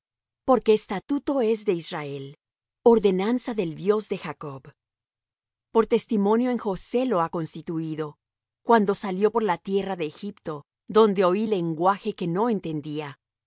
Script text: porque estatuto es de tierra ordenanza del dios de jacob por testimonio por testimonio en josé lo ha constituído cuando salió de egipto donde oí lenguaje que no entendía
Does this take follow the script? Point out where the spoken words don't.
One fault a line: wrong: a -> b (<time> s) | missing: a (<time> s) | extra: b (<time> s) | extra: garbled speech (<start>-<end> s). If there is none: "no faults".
wrong: tierra -> israel (1.7 s)
missing: por testimonio (6.5 s)
extra: por la tierra (9.3 s)